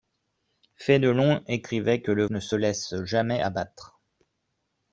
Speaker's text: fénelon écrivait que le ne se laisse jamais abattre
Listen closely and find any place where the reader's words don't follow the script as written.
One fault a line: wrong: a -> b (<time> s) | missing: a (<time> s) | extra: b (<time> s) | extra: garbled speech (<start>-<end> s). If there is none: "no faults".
no faults